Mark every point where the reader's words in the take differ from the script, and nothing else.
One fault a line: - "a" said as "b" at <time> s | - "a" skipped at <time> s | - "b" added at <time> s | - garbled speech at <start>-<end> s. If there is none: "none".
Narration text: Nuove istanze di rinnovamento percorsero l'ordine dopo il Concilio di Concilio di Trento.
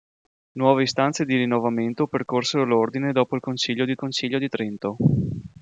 none